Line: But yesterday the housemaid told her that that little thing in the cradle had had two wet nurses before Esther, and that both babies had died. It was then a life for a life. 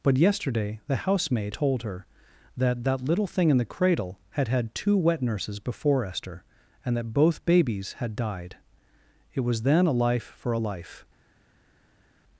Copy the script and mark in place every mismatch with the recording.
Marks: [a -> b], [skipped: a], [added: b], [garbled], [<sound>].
But yesterday the housemaid told her that that little thing in the cradle had had two wet nurses before Esther, and that both babies had died. It was then a life for a life.